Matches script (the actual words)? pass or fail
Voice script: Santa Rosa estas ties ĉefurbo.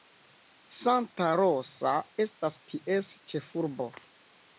pass